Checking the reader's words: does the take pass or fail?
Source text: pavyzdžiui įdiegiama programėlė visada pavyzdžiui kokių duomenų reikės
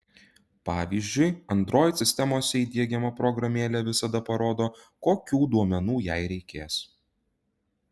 fail